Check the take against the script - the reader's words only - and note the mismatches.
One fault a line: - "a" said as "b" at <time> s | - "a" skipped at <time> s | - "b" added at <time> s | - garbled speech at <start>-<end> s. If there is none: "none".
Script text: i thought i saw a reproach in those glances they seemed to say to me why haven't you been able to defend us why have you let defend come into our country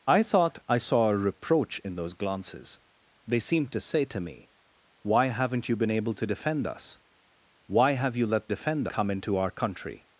none